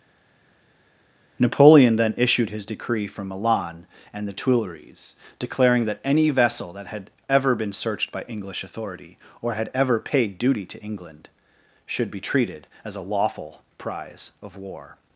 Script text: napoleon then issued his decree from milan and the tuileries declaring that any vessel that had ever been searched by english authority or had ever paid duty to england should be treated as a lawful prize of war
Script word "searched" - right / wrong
right